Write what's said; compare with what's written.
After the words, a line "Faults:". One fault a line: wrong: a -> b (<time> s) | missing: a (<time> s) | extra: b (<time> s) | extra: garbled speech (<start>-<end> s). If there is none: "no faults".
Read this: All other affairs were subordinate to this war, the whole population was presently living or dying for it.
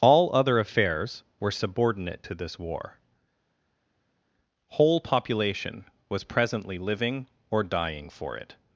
All other affairs were subordinate to this war, whole population was presently living or dying for it.
Faults:
missing: the (3.0 s)